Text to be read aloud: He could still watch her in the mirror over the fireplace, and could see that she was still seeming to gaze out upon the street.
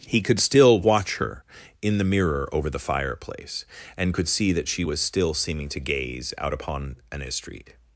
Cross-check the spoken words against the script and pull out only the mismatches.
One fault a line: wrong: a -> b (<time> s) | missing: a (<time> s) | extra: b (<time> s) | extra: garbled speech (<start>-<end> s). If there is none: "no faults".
wrong: the -> an (7.1 s)